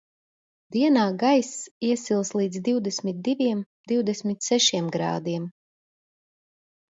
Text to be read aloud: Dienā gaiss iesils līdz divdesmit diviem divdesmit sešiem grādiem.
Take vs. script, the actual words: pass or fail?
pass